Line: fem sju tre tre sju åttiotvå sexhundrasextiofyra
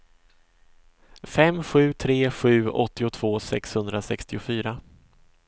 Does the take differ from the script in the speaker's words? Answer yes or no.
yes